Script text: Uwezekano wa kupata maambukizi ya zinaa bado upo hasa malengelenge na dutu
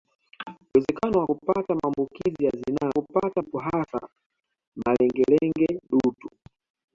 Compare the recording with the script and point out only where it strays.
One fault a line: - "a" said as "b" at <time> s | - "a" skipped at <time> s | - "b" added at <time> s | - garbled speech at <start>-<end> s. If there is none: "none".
- "bado" said as "kupata" at 2.9 s
- "na" skipped at 5.8 s